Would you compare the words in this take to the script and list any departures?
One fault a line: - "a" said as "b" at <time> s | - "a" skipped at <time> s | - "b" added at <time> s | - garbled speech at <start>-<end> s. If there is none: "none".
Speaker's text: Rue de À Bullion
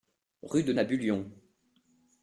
none